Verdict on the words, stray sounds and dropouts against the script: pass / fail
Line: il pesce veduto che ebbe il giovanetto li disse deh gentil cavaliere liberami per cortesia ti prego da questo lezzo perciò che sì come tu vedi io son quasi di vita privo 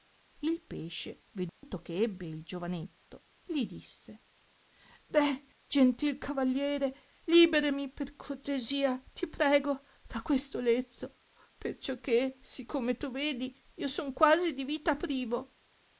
fail